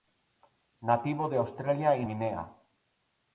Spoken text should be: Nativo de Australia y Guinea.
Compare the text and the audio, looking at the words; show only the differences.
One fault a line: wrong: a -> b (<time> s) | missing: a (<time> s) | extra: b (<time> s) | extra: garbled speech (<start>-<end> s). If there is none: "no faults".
no faults